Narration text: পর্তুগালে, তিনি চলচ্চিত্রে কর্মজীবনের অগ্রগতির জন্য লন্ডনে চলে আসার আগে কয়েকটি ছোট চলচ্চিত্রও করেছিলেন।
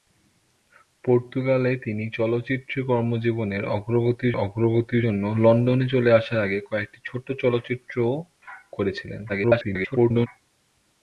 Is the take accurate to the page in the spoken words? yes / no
no